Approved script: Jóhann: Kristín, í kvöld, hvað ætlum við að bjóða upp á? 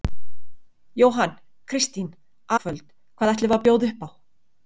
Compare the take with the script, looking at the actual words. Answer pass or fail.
pass